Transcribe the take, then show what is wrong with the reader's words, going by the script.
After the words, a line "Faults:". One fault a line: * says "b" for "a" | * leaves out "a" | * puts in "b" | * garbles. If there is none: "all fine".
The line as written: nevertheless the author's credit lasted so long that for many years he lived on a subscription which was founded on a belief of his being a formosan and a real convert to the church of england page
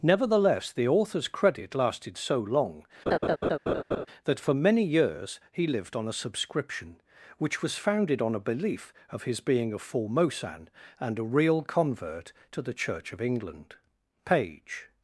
nevertheless the author's credit lasted so long that for many years he lived on a subscription which was founded on a belief of his being a formosan and a real convert to the church of england page
Faults:
all fine